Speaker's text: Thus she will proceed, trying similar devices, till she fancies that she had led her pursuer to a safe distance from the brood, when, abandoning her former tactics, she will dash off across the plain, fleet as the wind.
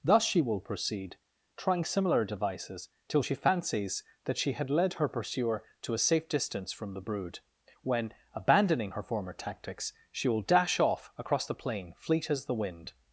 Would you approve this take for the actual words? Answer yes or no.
yes